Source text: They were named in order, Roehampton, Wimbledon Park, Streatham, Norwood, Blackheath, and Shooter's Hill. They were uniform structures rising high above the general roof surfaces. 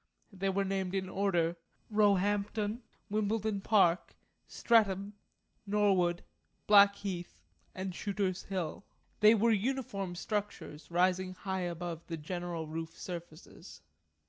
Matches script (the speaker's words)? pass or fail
pass